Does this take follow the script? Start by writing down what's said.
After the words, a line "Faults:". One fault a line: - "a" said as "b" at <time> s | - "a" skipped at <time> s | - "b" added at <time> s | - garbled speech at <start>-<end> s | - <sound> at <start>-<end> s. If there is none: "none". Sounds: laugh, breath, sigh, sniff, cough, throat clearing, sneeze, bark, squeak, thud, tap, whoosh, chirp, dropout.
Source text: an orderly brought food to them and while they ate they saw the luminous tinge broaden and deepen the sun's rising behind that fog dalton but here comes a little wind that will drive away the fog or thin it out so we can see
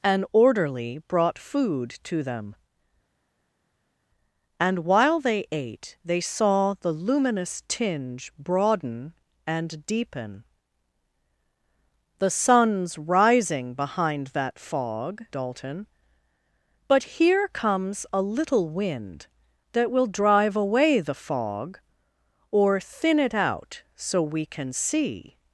an orderly brought food to them and while they ate they saw the luminous tinge broaden and deepen the sun's rising behind that fog dalton but here comes a little wind that will drive away the fog or thin it out so we can see
Faults:
none